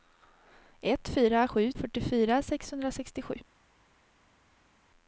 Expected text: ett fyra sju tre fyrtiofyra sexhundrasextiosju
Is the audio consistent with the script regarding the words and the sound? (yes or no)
no